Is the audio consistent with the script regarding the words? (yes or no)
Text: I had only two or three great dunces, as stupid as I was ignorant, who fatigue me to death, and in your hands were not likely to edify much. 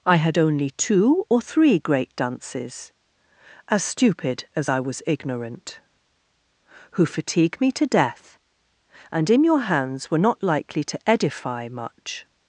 yes